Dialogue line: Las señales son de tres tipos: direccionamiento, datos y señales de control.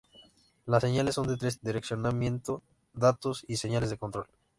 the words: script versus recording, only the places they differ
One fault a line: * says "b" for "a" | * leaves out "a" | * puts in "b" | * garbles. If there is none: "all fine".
* leaves out "tipos"